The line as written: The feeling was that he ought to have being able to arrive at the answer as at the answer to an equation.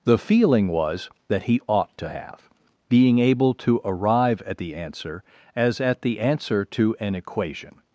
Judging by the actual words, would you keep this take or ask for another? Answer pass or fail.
pass